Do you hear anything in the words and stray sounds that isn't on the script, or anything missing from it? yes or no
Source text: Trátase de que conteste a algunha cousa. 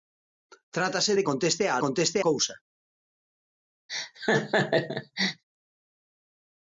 yes